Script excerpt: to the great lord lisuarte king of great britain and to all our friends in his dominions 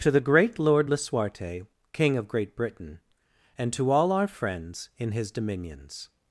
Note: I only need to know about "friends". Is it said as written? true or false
true